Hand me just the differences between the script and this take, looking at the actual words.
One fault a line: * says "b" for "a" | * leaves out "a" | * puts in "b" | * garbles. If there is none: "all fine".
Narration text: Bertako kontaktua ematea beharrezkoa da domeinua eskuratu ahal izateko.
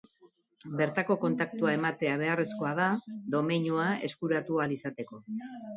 all fine